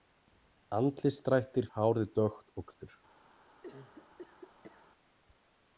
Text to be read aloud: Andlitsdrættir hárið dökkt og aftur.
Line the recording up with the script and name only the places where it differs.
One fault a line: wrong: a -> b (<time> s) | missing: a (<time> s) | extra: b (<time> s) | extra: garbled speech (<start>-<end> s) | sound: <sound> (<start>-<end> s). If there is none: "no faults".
sound: cough (3.6-4.9 s)